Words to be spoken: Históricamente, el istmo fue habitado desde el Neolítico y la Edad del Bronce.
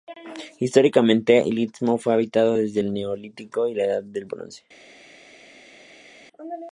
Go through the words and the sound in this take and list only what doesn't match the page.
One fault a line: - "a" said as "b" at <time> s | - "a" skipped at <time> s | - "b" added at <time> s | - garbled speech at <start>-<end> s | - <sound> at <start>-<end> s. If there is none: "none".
none